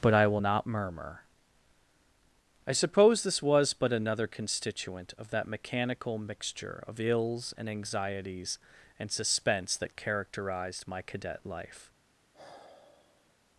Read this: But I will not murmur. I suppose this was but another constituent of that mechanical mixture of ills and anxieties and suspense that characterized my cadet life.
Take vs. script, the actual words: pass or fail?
pass